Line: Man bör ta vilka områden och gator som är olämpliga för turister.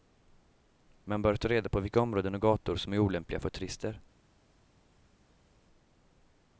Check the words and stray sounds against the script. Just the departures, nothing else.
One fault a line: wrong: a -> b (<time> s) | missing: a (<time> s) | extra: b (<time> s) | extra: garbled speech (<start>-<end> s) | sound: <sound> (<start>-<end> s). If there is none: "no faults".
extra: reda på (1.5 s)